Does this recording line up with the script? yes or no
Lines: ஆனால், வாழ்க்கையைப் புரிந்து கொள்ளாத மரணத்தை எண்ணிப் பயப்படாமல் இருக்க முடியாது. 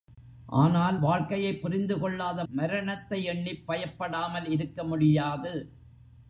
yes